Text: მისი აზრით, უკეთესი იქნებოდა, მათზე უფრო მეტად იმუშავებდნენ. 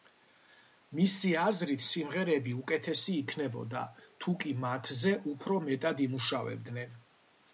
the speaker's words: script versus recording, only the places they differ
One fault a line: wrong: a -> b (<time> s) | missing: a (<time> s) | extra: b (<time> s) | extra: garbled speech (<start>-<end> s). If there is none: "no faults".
extra: სიმღერები (1.9 s)
extra: თუკი (4.2 s)